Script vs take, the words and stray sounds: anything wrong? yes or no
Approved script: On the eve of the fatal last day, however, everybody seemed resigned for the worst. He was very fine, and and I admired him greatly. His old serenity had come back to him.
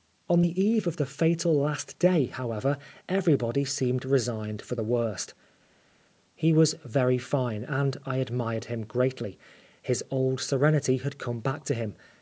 yes